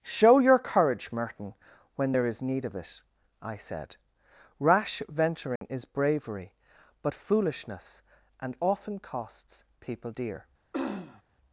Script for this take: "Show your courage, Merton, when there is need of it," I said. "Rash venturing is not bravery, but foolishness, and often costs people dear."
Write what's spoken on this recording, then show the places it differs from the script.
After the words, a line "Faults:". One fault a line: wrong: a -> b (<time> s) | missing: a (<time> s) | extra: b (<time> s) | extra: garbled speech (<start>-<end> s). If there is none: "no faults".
"Show your courage, Merton, when there is need of it," I said. "Rash venturing is bravery, but foolishness, and often costs people dear."
Faults:
missing: not (5.9 s)